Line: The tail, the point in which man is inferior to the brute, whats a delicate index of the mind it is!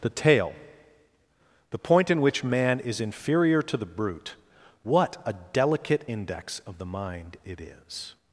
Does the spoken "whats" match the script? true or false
false